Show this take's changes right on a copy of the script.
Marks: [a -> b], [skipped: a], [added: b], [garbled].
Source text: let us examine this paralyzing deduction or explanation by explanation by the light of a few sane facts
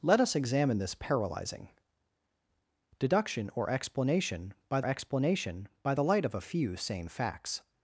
let us examine this paralyzing deduction or explanation by explanation by the light of a few sane facts